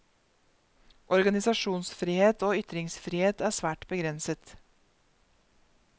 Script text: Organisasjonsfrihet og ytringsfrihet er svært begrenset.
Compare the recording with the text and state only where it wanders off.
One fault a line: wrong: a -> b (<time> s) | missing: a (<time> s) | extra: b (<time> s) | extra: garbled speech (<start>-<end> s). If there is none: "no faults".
no faults